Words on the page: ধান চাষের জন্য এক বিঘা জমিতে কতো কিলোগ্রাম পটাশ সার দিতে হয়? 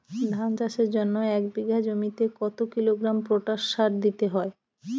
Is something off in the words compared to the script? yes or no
no